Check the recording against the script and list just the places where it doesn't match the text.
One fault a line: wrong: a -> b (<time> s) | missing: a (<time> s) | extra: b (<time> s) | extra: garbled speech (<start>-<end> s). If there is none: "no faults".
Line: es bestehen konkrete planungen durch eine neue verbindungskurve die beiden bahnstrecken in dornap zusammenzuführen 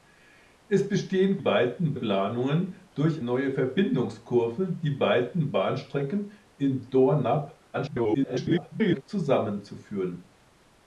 wrong: konkrete -> beiden (1.4 s)
missing: eine (3.2 s)
extra: garbled speech (7.7-9.0 s)